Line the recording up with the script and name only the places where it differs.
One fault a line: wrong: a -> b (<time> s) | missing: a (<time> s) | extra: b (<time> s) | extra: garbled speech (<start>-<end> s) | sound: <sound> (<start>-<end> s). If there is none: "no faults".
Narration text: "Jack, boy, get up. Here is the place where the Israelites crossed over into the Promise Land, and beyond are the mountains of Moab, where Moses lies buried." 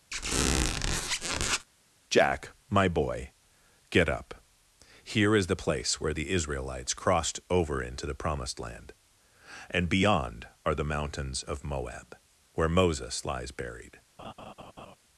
sound: squeak (0.1-1.7 s)
extra: my (2.7 s)
wrong: Promise -> Promised (8.1 s)
sound: laugh (14.2-15.0 s)